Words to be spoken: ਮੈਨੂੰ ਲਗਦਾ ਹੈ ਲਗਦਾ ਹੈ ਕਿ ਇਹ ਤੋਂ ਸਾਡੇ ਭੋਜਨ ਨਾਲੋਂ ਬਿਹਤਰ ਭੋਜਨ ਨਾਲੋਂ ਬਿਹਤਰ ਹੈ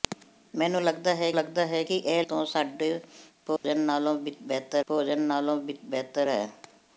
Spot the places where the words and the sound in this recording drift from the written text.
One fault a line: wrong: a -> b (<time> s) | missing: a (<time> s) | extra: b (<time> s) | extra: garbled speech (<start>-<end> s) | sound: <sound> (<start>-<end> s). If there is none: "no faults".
sound: dropout (3.6-3.6 s)